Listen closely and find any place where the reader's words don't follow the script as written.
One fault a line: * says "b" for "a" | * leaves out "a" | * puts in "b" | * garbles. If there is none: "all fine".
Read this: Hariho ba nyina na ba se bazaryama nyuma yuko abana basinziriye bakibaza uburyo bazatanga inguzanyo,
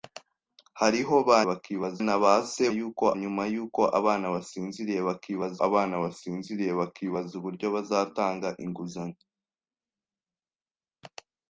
* says "bakibaza" for "nyina"
* says "yuko" for "bazaryama"
* puts in "abana basinziriye bakibaza"